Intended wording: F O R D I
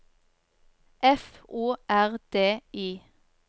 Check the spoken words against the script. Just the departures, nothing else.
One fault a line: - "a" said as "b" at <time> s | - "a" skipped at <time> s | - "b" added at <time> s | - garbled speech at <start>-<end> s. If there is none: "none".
none